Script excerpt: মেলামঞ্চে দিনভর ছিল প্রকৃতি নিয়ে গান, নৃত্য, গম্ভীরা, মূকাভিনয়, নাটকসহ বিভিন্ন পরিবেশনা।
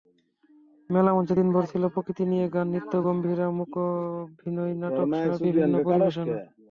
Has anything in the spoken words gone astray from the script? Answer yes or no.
no